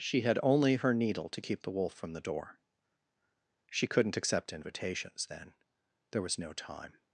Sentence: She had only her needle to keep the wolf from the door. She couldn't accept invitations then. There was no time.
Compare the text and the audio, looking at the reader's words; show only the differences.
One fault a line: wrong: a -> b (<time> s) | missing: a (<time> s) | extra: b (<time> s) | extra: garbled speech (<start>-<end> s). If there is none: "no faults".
no faults